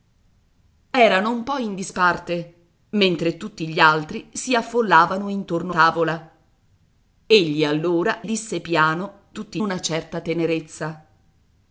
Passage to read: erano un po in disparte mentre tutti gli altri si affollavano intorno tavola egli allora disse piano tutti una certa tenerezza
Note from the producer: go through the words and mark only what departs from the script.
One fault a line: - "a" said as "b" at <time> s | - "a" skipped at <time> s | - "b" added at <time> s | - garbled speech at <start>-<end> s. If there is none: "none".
none